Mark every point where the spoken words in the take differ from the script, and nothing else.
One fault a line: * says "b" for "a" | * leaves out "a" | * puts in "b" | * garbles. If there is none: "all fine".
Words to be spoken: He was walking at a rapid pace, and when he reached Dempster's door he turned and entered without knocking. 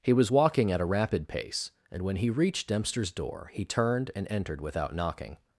all fine